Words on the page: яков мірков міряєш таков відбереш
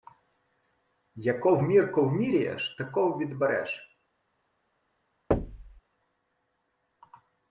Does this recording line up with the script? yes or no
yes